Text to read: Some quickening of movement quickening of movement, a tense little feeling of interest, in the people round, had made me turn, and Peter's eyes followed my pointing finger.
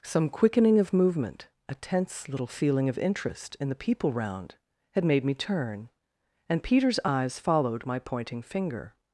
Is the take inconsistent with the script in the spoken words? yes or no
yes